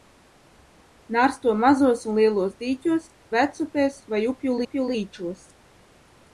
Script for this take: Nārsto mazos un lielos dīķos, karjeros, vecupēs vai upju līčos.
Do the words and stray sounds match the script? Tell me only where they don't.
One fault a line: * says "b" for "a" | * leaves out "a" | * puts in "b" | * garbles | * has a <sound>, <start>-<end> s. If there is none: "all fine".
* leaves out "karjeros"
* puts in "upju"